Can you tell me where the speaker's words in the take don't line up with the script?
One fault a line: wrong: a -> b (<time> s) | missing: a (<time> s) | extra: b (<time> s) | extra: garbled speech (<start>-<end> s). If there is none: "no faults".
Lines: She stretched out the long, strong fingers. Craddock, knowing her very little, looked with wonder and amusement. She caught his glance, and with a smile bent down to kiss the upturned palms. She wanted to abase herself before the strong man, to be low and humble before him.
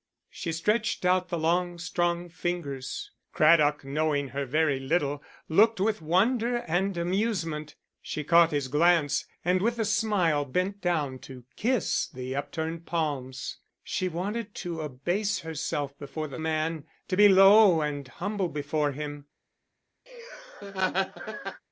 missing: strong (16.4 s)